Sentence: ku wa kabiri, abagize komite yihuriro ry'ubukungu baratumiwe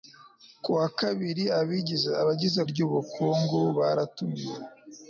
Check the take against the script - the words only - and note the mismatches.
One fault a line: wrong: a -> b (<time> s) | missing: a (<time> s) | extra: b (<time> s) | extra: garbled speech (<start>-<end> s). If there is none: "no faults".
missing: komite yihuriro (2.6 s)